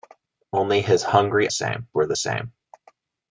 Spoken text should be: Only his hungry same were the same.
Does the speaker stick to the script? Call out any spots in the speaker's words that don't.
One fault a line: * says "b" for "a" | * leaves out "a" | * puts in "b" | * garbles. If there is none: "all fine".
all fine